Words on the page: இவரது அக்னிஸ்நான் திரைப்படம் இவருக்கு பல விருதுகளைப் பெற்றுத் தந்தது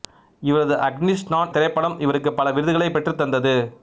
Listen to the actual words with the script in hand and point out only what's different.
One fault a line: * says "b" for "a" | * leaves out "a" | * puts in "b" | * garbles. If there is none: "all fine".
all fine